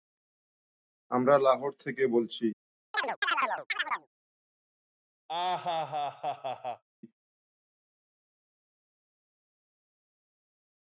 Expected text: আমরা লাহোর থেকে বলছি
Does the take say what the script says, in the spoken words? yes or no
yes